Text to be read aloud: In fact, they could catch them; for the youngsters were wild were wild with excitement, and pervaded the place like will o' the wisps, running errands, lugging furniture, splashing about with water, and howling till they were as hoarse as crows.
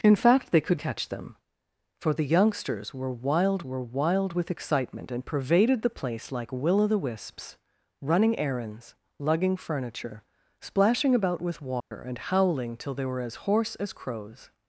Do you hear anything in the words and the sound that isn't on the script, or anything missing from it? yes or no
yes